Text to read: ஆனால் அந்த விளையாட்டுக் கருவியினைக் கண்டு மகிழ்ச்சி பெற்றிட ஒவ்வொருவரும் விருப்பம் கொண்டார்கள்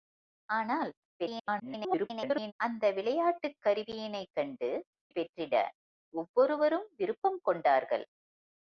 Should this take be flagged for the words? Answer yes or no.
yes